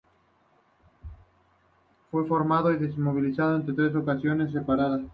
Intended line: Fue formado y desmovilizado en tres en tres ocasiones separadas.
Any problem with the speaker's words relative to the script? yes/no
yes